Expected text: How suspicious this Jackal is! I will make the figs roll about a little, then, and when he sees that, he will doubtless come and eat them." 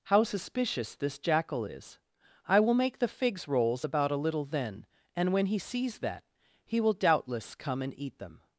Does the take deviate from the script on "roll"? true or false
true